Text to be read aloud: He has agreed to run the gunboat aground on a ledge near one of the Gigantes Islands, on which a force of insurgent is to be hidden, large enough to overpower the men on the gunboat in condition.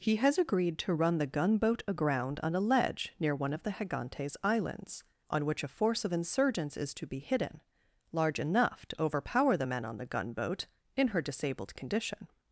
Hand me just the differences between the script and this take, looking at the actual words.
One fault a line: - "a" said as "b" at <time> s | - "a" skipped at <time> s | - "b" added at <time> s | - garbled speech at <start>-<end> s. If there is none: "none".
- "insurgent" said as "insurgents" at 6.1 s
- "her disabled" added at 11.1 s